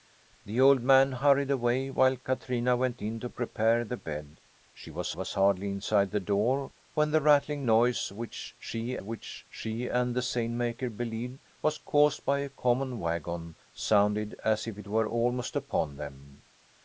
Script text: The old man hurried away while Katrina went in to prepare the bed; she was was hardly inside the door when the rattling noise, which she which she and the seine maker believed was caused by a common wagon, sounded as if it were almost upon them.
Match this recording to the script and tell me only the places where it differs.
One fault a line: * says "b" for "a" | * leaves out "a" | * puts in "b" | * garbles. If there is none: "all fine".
all fine